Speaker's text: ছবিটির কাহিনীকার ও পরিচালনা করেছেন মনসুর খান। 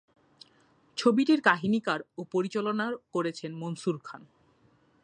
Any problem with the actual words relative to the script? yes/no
no